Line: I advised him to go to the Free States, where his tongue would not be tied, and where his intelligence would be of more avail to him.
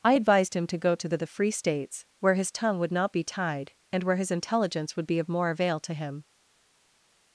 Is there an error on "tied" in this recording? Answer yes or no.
no